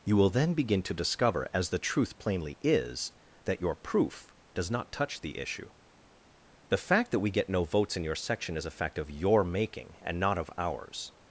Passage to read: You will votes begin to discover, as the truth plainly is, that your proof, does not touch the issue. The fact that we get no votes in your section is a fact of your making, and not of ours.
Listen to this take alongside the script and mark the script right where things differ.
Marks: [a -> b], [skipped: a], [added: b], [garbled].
You will [votes -> then] begin to discover, as the truth plainly is, that your proof, does not touch the issue. The fact that we get no votes in your section is a fact of your making, and not of ours.